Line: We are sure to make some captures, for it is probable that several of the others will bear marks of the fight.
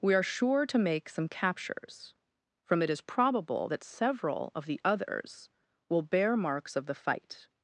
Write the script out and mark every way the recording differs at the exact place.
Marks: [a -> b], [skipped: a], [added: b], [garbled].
We are sure to make some captures, [for -> from] it is probable that several of the others will bear marks of the fight.